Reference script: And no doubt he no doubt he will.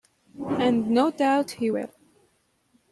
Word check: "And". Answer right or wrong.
right